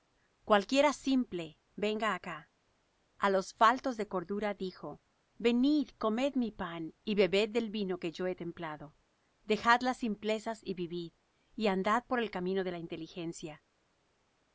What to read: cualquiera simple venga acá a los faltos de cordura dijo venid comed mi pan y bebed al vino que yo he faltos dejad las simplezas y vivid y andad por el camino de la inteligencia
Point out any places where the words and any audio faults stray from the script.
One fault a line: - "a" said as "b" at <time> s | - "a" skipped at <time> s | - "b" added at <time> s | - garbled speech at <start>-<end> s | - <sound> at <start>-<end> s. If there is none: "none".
- "al" said as "del" at 7.5 s
- "faltos" said as "templado" at 8.3 s